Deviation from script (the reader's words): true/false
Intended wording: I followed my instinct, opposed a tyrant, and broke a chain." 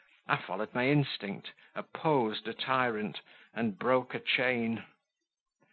false